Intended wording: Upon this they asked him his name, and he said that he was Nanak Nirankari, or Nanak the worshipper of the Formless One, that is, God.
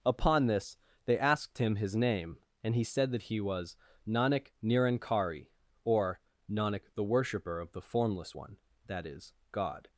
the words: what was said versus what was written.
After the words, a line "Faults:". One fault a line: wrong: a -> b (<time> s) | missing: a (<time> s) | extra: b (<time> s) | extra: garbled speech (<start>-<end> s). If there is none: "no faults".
Upon this they asked him his name, and he said that he was Nanak Nirankari, or Nanak the worshipper of the Formless One, that is, God.
Faults:
no faults